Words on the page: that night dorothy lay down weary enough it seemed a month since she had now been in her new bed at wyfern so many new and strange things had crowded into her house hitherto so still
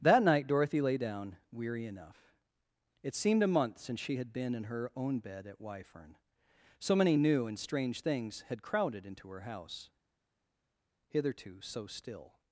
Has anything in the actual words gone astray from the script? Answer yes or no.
yes